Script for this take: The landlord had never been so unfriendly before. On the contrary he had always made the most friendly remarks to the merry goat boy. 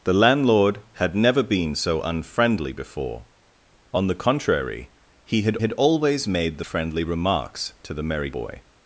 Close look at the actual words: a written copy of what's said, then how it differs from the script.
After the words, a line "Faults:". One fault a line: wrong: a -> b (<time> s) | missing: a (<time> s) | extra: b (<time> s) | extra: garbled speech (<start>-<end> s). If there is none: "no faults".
The landlord had never been so unfriendly before. On the contrary he had had always made the friendly remarks to the merry boy.
Faults:
extra: had (5.6 s)
missing: most (6.6 s)
missing: goat (8.3 s)